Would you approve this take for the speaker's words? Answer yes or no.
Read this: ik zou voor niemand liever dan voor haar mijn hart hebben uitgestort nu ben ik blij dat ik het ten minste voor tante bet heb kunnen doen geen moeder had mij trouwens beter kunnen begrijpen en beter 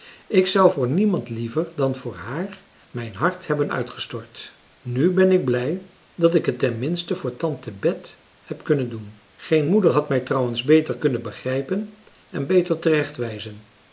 yes